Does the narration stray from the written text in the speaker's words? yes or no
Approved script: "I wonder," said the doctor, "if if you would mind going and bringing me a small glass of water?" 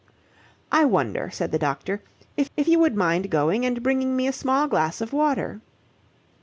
no